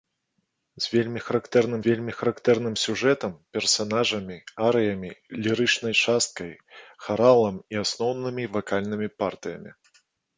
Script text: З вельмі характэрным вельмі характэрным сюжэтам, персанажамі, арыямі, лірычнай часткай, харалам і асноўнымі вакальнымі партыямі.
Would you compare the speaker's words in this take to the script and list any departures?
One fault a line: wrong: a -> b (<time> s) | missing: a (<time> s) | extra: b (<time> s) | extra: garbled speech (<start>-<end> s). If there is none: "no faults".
no faults